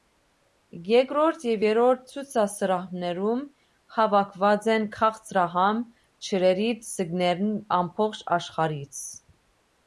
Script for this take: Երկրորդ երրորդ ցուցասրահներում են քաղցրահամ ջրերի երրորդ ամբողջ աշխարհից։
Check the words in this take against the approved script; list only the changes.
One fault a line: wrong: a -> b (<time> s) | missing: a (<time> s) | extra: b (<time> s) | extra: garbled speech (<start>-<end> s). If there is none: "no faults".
extra: և (1.5 s)
extra: հավաքված (4.0 s)
wrong: երրորդ -> ձկներն (6.9 s)